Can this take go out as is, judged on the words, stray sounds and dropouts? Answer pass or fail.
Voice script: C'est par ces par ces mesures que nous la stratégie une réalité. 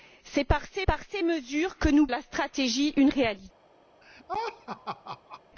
fail